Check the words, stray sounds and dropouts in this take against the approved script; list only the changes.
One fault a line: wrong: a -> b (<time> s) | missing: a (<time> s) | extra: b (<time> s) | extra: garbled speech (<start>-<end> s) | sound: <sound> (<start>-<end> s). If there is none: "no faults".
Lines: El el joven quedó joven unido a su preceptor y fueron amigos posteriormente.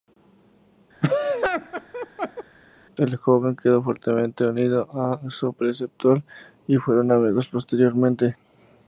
sound: laugh (1.0-2.4 s)
missing: el (3.2 s)
wrong: joven -> fuertemente (3.8 s)